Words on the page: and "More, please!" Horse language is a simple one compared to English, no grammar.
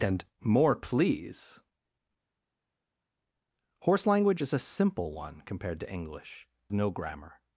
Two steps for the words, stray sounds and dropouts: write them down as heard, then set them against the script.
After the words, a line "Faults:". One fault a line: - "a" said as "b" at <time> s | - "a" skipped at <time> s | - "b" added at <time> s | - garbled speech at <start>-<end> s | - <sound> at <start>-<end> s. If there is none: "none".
and "More, please!" Horse language is a simple one compared to English, no grammar.
Faults:
none